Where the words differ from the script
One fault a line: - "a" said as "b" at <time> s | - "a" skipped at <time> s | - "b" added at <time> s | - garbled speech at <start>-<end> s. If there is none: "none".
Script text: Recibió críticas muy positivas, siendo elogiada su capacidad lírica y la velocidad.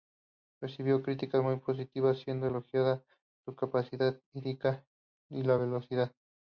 none